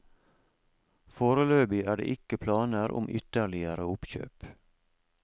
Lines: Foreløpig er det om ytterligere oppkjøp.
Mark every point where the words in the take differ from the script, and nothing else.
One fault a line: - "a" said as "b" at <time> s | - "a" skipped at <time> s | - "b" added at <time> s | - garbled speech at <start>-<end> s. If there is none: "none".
- "ikke planer" added at 2.1 s